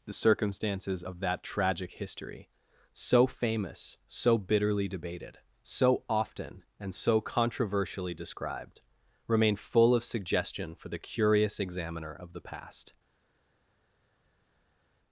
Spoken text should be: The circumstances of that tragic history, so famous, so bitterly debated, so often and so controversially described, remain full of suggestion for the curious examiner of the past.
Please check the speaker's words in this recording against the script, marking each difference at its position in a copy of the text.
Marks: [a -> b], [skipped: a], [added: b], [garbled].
The circumstances of that tragic history, so famous, so bitterly debated, so often and so controversially described, remain full of suggestion for the curious examiner of the past.